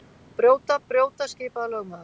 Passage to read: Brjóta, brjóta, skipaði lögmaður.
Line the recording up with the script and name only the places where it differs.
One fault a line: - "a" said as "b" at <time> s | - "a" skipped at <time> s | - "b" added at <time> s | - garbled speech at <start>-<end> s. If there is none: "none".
none